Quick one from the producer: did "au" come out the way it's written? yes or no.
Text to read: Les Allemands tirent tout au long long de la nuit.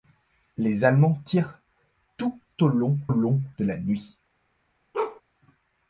yes